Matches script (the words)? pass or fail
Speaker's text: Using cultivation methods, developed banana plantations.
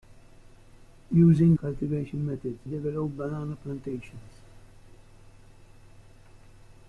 pass